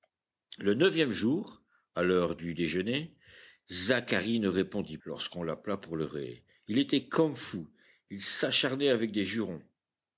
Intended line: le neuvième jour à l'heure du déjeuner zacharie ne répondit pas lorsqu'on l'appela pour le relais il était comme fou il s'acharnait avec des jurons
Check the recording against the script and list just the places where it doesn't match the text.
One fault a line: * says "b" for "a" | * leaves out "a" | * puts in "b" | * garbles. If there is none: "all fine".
* leaves out "pas"